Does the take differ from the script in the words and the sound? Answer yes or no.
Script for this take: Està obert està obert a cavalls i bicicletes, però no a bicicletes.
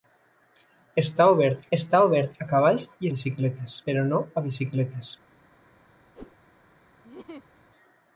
yes